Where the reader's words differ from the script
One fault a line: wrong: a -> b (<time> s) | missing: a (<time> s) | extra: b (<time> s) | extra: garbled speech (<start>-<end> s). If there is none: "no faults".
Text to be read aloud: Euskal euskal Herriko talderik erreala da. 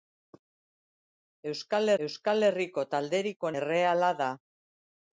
no faults